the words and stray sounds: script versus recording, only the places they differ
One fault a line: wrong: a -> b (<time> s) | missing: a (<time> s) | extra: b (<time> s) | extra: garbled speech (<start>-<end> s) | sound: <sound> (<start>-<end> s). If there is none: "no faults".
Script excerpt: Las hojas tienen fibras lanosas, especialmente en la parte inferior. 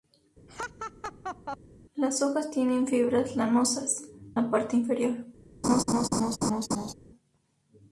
sound: laugh (0.5-1.6 s)
missing: especialmente en (4.1 s)
sound: laugh (5.6-6.9 s)